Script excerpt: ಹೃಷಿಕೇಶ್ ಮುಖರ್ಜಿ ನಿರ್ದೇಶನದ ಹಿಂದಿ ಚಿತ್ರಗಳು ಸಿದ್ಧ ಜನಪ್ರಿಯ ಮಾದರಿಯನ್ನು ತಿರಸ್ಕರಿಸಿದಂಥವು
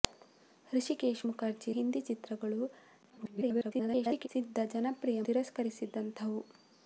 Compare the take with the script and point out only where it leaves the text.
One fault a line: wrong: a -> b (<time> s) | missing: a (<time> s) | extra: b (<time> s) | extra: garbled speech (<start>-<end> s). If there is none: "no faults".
missing: ನಿರ್ದೇಶನದ (1.7 s)
extra: garbled speech (3.1-4.3 s)
missing: ಮಾದರಿಯನ್ನು (5.2 s)